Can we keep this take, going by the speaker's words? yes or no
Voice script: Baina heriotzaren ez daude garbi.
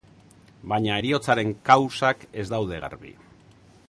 no